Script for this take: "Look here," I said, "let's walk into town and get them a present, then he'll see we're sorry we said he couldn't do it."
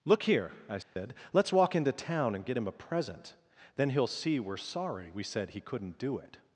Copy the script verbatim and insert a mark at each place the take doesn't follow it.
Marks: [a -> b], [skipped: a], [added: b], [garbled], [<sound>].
"Look here," I said, [dropout] "let's walk into town and get [them -> him] a present, then he'll see we're sorry we said he couldn't do it."